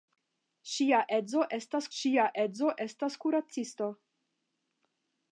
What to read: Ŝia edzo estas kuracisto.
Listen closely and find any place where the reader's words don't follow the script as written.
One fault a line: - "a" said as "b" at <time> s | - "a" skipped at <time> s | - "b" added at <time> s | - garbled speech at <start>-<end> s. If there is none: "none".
- "ŝia edzo estas" added at 2.0 s